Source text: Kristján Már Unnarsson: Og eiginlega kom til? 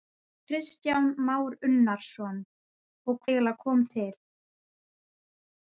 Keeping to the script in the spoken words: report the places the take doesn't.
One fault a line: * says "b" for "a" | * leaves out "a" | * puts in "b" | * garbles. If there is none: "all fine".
all fine